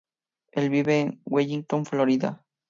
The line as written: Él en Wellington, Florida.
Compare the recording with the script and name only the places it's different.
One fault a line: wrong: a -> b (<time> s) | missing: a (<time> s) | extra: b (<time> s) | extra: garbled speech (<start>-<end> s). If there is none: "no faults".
extra: vive (0.7 s)